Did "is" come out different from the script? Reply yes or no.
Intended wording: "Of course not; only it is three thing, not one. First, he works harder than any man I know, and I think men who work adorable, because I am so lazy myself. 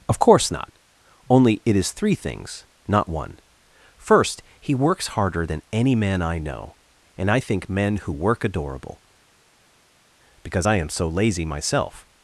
no